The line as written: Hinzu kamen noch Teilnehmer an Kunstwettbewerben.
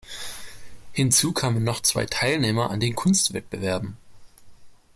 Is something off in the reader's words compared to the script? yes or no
yes